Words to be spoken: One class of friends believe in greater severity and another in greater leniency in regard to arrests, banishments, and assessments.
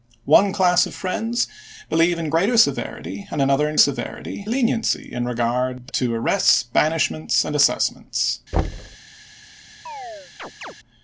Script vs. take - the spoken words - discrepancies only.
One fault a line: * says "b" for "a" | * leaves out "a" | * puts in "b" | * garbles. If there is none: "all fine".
* says "severity" for "greater"